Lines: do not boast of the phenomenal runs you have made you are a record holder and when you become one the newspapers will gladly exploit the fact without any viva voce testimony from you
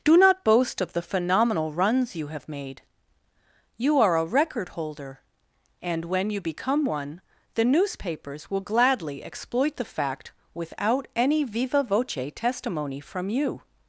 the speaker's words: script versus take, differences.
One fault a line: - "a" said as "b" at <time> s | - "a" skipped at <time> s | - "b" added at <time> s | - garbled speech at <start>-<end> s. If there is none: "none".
none